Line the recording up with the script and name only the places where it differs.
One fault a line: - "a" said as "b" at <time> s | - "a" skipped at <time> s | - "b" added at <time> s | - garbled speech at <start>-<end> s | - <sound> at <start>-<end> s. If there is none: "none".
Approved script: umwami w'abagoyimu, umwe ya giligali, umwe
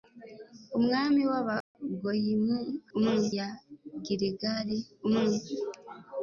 - dropout at 1.6-1.7 s